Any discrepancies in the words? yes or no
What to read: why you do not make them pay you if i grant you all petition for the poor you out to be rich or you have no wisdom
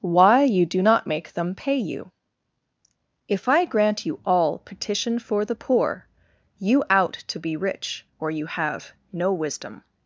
no